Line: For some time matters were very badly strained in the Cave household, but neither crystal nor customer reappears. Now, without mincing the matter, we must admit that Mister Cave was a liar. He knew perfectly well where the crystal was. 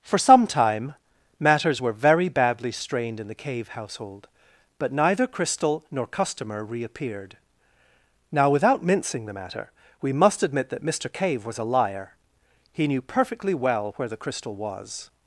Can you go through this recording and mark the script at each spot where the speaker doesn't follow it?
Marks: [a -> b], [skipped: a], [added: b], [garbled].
For some time matters were very badly strained in the Cave household, but neither crystal nor customer [reappears. -> reappeared] Now, without mincing the matter, we must admit that Mister Cave was a liar. He knew perfectly well where the crystal was.